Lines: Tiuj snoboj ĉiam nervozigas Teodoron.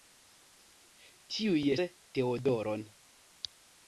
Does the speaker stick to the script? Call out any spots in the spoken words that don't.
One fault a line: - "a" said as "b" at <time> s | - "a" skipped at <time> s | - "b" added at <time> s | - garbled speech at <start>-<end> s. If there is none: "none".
- "snoboj ĉiam nervozigas" skipped at 1.6 s